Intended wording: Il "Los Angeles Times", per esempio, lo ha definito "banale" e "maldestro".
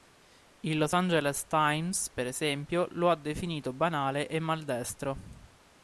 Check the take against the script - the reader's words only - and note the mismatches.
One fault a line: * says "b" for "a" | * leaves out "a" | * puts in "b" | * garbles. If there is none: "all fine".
all fine